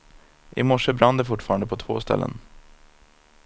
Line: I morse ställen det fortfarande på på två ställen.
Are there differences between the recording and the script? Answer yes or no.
yes